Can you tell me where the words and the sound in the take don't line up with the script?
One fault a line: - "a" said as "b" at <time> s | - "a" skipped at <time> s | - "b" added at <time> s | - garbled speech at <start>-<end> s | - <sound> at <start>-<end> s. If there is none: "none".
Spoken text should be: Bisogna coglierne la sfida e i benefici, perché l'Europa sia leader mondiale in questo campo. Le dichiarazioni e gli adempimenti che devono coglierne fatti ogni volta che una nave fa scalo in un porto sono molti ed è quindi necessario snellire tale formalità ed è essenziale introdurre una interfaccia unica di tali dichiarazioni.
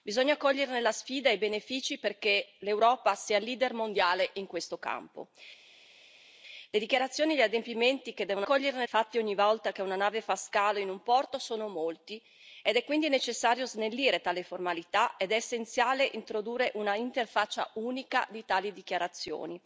none